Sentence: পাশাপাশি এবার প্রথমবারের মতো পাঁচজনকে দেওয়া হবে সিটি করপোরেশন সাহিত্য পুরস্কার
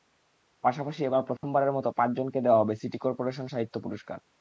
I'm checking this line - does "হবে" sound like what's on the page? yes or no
yes